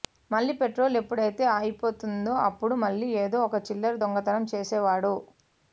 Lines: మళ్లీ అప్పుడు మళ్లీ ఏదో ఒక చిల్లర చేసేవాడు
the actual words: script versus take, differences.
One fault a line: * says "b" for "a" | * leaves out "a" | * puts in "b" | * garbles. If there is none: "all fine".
* puts in "పెట్రోల్ ఎప్పుడైతే అయిపోతుందో"
* puts in "దొంగతనం"